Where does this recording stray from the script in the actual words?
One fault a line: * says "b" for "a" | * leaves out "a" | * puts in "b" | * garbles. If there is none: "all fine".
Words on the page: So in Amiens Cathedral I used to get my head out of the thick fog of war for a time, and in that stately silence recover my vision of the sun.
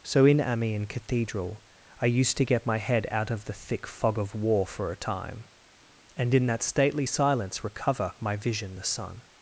* leaves out "of"